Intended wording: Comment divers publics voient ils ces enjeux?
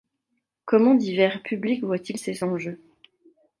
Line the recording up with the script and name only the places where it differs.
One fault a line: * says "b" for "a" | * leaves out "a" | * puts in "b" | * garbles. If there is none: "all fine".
all fine